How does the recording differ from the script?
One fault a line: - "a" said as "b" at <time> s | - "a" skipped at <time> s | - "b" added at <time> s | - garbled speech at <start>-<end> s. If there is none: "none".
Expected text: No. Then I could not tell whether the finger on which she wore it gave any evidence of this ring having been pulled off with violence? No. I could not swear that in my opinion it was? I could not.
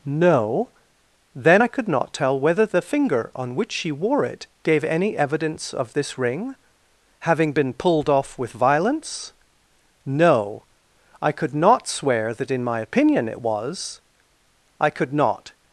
none